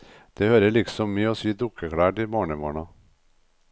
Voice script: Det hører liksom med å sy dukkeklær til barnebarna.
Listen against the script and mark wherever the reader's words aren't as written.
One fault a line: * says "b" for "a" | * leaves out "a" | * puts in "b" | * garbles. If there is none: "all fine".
all fine